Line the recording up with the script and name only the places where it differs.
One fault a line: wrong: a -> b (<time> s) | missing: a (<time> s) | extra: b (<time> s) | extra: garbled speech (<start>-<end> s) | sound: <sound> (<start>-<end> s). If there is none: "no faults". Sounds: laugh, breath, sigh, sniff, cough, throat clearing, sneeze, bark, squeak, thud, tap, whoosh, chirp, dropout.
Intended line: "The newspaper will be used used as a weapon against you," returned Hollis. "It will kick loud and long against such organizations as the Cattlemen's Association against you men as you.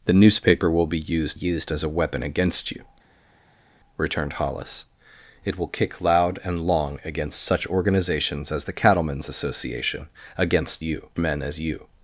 no faults